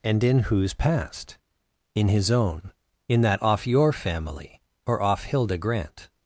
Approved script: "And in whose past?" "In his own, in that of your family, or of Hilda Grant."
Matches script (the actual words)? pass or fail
fail